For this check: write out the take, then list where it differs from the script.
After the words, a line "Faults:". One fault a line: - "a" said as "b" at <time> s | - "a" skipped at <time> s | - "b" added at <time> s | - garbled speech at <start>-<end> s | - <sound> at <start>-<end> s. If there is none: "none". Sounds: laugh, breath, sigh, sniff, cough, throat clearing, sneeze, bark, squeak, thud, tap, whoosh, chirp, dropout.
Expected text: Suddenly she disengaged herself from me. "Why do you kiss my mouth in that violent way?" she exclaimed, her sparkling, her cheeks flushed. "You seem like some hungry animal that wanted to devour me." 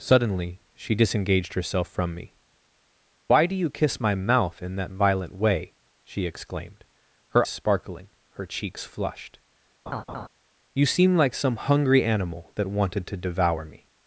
Suddenly she disengaged herself from me. "Why do you kiss my mouth in that violent way?" she exclaimed, her sparkling, her cheeks flushed. "You seem like some hungry animal that wanted to devour me."
Faults:
- laugh at 9.9-10.3 s